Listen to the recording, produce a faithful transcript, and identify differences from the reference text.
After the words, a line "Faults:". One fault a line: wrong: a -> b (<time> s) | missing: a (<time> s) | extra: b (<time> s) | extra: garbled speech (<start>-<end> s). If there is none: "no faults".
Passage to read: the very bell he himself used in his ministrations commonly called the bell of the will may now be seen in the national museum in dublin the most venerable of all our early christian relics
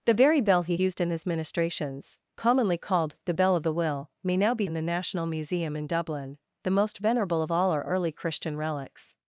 the very bell he used in his ministrations commonly called the bell of the will may now be in the national museum in dublin the most venerable of all our early christian relics
Faults:
missing: himself (0.8 s)
missing: seen (4.7 s)